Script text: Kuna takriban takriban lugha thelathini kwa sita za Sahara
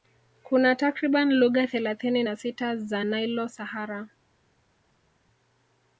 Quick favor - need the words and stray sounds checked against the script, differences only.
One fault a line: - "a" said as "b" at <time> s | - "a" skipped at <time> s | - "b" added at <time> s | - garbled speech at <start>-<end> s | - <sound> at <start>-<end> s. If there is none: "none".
- "takriban" skipped at 1.3 s
- "kwa" said as "na" at 2.2 s
- "Nilo" added at 3.0 s